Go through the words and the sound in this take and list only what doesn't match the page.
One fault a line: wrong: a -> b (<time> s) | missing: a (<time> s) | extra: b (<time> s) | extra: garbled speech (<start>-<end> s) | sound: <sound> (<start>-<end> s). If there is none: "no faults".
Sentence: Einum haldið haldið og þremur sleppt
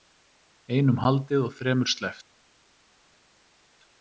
missing: haldið (1.4 s)